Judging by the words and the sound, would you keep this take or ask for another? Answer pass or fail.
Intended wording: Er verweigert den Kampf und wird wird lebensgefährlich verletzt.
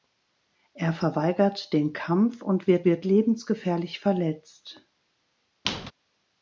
fail